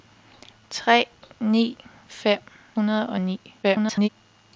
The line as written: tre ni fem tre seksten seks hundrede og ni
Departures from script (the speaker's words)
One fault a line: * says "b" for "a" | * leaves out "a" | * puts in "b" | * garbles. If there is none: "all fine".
* leaves out "tre seksten seks"
* garbles